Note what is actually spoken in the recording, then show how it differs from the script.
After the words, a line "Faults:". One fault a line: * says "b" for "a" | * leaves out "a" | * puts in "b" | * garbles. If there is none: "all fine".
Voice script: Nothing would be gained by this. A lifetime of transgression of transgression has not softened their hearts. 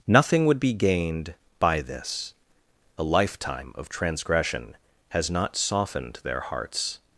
Nothing would be gained by this. A lifetime of transgression has not softened their hearts.
Faults:
* leaves out "of transgression"